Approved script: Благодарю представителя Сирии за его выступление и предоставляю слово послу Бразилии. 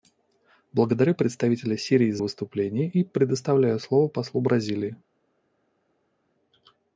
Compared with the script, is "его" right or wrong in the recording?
wrong